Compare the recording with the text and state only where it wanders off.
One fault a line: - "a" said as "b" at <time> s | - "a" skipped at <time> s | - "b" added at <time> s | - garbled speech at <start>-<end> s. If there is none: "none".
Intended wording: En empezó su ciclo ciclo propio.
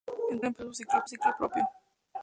none